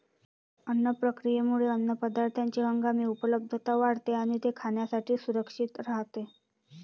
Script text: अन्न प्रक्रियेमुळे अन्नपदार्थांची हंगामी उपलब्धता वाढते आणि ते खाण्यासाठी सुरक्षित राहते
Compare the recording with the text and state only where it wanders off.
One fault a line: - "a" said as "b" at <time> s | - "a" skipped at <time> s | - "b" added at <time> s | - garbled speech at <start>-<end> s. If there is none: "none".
none